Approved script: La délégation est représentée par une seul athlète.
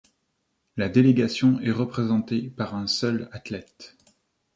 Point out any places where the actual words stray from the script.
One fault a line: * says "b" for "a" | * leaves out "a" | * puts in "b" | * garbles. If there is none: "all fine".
* says "un" for "une"